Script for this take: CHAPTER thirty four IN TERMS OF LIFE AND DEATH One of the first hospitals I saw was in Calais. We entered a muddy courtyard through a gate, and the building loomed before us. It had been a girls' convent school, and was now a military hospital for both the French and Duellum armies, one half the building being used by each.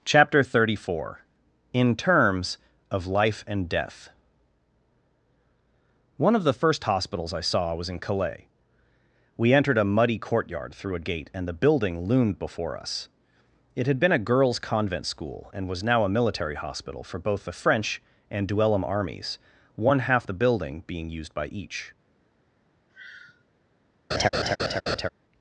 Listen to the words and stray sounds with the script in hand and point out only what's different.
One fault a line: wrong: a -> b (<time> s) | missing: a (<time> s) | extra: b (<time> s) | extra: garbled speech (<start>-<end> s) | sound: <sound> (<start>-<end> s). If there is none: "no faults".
sound: sigh (22.9-23.4 s)
sound: laugh (24.1-25.1 s)